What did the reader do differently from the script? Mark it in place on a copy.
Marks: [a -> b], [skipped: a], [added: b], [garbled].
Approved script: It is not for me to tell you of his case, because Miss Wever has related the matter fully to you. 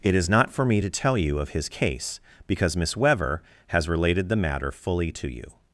It is not for me to tell you of his case, because Miss Wever has related the matter fully to you.